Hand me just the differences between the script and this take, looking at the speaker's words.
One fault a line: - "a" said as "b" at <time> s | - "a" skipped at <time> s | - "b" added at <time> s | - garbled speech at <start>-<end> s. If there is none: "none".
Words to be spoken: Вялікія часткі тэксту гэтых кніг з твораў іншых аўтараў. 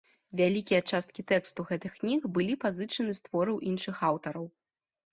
- "былі пазычаны" added at 2.4 s